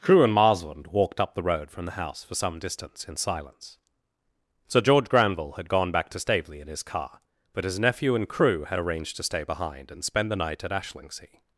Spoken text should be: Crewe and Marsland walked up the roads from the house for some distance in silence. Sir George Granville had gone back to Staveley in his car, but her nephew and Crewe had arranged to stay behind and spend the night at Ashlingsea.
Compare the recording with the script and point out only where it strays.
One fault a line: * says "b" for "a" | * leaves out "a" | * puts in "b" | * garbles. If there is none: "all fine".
* says "road" for "roads"
* says "his" for "her"